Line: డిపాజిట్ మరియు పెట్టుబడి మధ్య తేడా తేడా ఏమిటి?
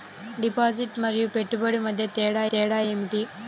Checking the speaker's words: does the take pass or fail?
pass